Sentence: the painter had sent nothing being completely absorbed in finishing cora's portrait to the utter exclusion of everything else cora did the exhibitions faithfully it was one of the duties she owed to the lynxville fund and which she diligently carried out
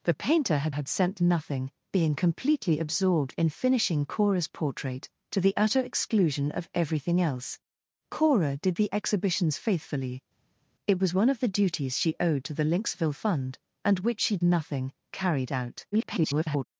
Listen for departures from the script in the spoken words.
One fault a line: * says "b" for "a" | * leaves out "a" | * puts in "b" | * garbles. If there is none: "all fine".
* puts in "had"
* says "nothing" for "diligently"
* garbles